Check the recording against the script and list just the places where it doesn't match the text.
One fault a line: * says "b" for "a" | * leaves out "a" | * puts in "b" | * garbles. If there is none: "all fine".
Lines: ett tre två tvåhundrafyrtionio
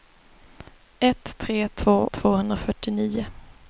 all fine